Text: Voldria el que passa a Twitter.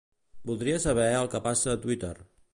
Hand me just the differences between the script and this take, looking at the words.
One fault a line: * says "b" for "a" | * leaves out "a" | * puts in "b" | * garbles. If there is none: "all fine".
* puts in "saber"